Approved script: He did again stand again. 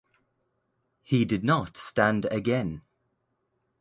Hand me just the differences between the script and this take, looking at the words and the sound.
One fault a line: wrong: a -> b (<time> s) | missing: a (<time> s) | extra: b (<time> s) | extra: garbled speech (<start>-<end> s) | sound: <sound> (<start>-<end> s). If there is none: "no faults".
wrong: again -> not (1.4 s)